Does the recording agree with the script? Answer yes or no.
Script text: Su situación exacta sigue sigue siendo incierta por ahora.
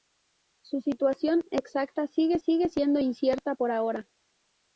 yes